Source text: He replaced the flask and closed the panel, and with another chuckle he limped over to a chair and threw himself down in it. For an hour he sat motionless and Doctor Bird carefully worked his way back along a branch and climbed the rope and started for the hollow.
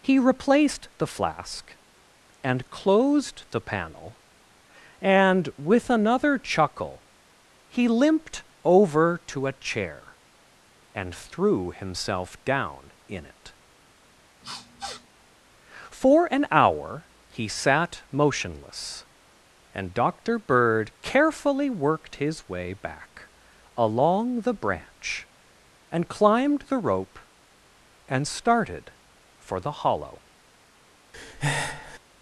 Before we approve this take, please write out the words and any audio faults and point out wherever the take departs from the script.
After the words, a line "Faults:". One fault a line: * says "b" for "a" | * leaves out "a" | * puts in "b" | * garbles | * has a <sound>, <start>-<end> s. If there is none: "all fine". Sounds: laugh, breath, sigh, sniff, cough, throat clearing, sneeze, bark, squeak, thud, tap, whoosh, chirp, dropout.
He replaced the flask and closed the panel, and with another chuckle he limped over to a chair and threw himself down in it. For an hour he sat motionless and Doctor Bird carefully worked his way back along the branch and climbed the rope and started for the hollow.
Faults:
* has a sniff, 14.4-15.1 s
* says "the" for "a"
* has a breath, 31.1-32.0 s